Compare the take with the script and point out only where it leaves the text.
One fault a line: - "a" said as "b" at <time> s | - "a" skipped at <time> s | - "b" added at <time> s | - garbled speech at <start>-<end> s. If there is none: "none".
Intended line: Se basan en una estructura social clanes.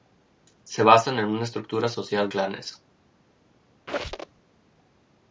none